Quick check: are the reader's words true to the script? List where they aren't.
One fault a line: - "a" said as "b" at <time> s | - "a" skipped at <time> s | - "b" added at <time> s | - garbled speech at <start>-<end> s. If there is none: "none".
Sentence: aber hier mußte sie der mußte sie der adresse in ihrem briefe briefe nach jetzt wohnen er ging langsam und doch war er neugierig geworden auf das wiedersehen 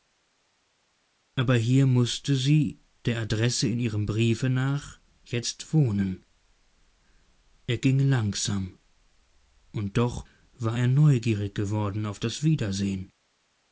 - "mußte sie der" skipped at 3.2 s
- "briefe" skipped at 4.5 s